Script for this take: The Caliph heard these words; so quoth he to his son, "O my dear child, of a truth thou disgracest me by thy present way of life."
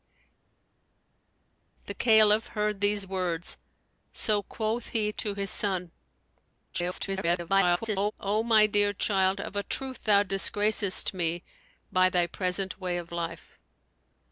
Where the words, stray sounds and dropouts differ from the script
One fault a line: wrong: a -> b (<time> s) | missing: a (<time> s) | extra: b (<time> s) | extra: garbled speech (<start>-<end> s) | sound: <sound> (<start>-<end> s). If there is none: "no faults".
extra: garbled speech (6.7-8.1 s)